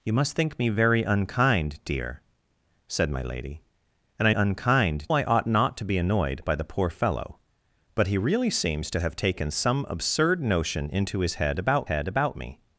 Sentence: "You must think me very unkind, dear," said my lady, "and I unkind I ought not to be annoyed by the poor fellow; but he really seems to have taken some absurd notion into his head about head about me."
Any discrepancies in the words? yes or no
no